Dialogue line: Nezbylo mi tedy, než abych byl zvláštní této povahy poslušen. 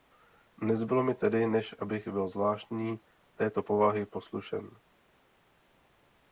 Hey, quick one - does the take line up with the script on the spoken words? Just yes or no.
yes